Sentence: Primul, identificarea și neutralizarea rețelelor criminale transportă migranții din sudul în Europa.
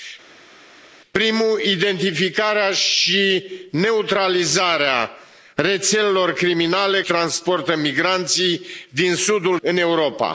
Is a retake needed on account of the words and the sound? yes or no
no